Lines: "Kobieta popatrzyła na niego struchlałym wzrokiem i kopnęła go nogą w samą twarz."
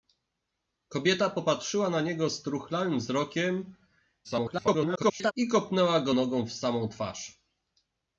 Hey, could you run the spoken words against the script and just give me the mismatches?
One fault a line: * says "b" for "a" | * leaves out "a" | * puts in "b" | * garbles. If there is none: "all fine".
* garbles